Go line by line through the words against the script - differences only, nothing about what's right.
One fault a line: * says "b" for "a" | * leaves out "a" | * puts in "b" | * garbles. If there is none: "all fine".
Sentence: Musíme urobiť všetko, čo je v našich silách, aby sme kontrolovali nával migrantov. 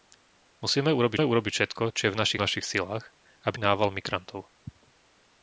* puts in "urobiť"
* puts in "našich"
* leaves out "sme kontrolovali"